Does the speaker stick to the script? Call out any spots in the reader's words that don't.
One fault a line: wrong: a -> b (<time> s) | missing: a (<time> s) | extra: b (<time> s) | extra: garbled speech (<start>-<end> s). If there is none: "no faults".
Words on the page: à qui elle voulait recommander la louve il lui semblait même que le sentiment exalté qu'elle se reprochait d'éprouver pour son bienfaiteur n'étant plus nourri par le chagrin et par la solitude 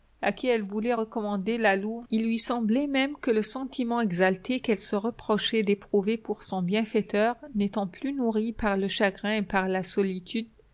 no faults